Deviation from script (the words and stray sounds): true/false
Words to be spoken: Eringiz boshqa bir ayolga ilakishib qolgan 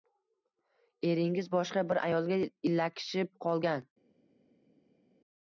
false